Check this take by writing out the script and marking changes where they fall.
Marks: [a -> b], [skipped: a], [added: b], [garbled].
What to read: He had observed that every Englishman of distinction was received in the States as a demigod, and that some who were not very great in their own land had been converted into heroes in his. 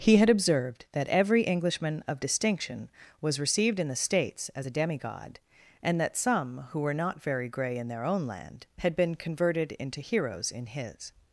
He had observed that every Englishman of distinction was received in the States as a demigod, and that some who were not very [great -> grey] in their own land had been converted into heroes in his.